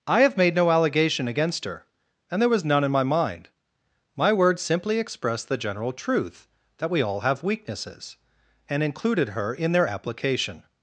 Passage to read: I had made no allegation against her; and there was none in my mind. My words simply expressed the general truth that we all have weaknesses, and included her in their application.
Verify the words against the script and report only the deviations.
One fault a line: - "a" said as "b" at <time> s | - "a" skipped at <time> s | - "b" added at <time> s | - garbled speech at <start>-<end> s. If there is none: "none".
- "had" said as "have" at 0.2 s